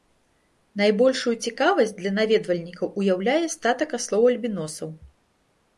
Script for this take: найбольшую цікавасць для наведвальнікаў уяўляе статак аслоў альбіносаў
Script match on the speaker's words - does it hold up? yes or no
yes